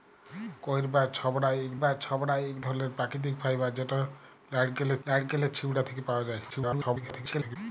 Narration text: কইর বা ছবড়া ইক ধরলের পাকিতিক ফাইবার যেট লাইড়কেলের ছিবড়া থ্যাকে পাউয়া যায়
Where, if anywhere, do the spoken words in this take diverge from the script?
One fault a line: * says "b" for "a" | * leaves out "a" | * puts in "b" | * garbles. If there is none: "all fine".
* puts in "বা ছবড়া ইক"
* puts in "লাইড়কেলের"
* garbles